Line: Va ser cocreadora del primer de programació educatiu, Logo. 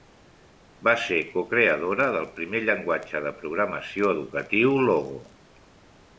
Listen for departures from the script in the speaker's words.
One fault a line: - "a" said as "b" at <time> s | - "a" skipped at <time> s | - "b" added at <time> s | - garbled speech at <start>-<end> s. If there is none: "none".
- "llenguatge" added at 2.6 s